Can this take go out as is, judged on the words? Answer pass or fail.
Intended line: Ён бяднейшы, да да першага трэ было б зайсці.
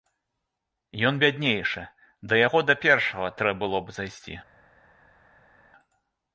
fail